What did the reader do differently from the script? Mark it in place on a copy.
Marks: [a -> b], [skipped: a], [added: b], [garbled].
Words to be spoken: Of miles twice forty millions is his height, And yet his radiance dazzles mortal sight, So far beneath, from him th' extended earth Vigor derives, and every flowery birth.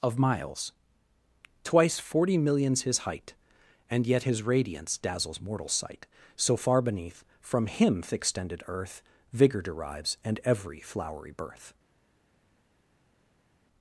Of miles twice forty millions [skipped: is] his height, And yet his radiance dazzles mortal sight, So far beneath, from him th' extended earth Vigor derives, and every flowery birth.